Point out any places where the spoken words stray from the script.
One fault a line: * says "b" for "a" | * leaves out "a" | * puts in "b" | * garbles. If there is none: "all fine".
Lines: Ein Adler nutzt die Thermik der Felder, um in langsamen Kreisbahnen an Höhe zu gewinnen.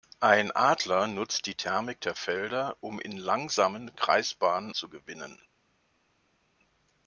* leaves out "an Höhe"